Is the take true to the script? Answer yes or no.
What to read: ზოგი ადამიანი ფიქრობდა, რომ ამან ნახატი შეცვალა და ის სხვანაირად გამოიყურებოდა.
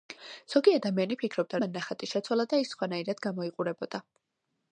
no